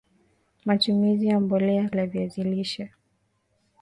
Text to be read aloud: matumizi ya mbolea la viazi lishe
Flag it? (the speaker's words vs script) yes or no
no